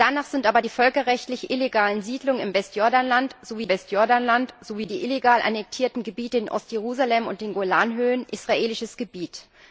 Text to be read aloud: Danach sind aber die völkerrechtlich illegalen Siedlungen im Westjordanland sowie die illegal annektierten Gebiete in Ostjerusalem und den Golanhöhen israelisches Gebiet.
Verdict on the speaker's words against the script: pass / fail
fail